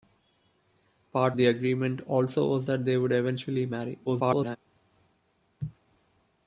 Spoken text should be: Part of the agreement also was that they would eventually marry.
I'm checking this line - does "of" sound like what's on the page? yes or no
no